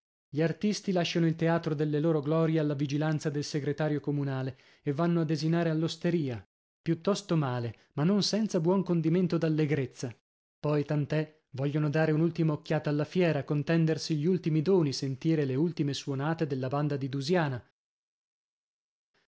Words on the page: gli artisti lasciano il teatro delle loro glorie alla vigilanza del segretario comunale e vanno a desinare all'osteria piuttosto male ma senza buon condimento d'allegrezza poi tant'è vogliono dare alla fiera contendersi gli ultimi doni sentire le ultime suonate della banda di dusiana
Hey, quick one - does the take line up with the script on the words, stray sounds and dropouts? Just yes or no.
no